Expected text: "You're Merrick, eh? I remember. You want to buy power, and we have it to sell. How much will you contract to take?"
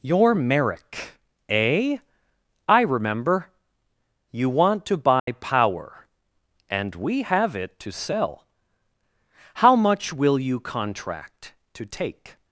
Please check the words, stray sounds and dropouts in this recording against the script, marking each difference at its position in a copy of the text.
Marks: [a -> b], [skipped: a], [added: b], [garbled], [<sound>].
"You're Merrick, eh? I remember. You want to buy [dropout] power, and we have it to sell. How much will you contract to take?"